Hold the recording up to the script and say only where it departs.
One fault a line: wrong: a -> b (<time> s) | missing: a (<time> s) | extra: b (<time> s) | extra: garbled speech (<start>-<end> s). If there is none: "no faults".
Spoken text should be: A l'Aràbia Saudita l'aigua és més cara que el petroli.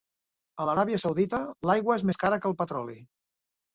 no faults